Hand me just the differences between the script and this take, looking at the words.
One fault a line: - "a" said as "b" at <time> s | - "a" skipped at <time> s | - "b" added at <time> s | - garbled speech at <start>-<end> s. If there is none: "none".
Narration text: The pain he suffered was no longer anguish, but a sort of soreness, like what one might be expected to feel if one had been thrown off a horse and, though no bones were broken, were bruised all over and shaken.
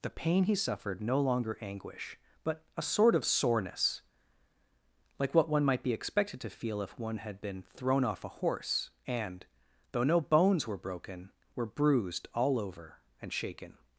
- "was" skipped at 1.0 s